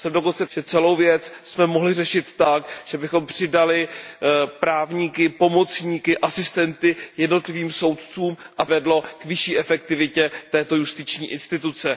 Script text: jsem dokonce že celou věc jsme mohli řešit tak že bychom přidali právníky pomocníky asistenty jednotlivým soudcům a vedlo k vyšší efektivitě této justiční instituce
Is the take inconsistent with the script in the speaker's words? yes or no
no